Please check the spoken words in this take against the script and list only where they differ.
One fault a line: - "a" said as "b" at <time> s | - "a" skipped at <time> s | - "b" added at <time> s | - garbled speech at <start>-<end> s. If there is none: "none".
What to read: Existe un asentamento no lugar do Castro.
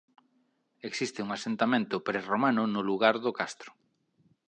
- "prerromano" added at 2.1 s